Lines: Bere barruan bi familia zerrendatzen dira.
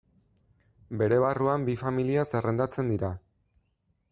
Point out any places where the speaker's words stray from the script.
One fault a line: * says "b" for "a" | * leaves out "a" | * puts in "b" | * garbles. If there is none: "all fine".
all fine